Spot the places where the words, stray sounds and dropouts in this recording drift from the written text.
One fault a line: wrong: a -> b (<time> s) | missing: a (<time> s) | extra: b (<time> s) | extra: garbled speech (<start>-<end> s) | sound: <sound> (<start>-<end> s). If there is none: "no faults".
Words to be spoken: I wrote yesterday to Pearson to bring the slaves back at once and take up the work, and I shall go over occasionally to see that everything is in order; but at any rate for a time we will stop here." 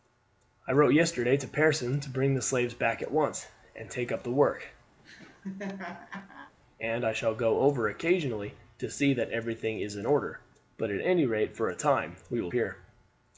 sound: laugh (5.0-6.5 s)
missing: stop (12.5 s)